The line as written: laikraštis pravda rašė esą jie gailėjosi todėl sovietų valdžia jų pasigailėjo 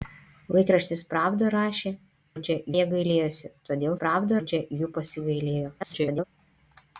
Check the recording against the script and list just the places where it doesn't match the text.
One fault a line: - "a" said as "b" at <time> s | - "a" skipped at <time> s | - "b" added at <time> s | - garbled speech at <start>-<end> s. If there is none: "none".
- "esą" said as "valdžia" at 2.3 s
- "sovietų" said as "pravda" at 4.0 s
- garbled speech at 5.8-6.2 s